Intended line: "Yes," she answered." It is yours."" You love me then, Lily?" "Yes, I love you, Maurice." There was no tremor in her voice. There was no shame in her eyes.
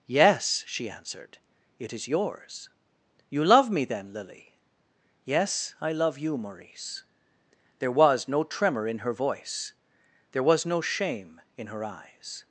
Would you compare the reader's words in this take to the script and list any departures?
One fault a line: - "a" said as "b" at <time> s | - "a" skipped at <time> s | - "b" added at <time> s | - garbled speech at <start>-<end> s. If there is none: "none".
none